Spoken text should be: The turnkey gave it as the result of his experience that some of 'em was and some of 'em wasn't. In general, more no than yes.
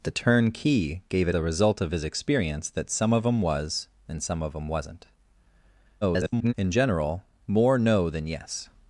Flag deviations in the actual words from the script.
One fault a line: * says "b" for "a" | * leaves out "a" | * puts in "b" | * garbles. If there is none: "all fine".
* leaves out "as"
* garbles